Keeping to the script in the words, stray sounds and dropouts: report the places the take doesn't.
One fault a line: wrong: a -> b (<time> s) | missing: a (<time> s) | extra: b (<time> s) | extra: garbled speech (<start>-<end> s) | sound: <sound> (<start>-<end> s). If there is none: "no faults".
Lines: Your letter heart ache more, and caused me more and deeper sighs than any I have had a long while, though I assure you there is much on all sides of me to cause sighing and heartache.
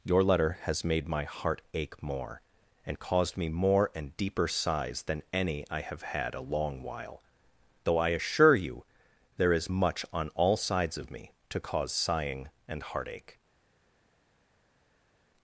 extra: has made my (0.6 s)